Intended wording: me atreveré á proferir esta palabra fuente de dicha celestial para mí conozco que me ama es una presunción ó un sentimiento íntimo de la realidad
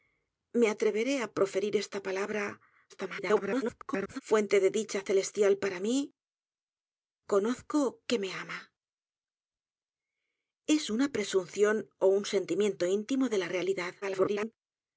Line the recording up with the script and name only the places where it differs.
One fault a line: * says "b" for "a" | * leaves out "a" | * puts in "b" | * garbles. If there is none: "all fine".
* garbles
* garbles